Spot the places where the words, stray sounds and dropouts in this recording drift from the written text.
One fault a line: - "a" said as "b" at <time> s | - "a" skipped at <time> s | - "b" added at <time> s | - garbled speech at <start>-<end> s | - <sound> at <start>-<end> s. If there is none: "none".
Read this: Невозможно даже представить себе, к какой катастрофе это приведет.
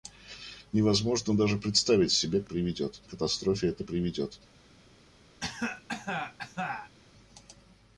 - "какой" said as "приведет" at 2.4 s
- cough at 5.4-6.9 s